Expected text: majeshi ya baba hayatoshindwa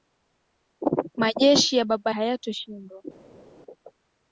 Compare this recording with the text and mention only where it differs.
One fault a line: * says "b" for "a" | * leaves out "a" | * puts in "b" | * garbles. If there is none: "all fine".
all fine